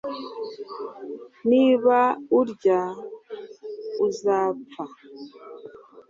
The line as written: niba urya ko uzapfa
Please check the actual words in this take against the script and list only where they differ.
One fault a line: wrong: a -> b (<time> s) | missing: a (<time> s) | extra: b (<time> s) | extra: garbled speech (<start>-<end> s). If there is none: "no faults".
missing: ko (2.8 s)